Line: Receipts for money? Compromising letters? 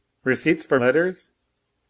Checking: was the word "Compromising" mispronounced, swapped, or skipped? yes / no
yes